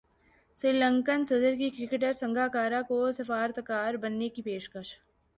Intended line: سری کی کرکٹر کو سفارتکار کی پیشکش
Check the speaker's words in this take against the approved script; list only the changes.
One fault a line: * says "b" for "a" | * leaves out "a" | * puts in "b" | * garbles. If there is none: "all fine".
* puts in "لنکن صدر"
* puts in "سنگاکارا"
* puts in "بننے"